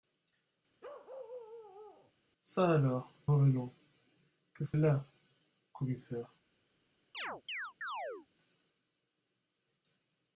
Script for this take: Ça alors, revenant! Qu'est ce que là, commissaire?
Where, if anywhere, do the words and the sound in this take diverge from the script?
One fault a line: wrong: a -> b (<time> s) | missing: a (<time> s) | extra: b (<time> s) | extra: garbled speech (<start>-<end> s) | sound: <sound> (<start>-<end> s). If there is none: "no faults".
sound: bark (0.8-2.1 s)
sound: chirp (7.1-8.3 s)